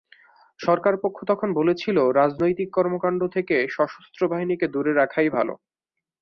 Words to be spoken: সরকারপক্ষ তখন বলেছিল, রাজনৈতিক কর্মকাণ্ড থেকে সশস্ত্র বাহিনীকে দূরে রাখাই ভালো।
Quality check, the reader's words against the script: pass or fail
pass